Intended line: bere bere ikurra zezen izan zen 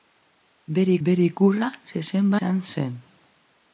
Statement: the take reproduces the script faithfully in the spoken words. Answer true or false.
true